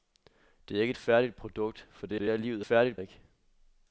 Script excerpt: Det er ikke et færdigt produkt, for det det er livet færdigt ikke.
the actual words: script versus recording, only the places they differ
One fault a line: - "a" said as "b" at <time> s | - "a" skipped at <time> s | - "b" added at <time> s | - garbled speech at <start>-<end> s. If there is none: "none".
none